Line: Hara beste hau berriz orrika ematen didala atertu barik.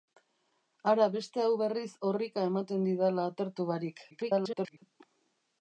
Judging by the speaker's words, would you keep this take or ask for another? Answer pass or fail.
fail